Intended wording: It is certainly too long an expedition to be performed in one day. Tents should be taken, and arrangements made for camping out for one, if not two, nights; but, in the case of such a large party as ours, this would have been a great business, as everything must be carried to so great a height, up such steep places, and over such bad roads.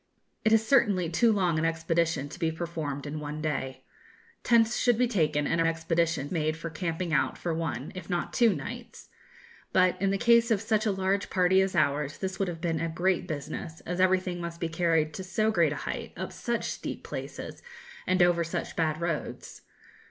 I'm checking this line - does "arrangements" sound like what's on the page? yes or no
no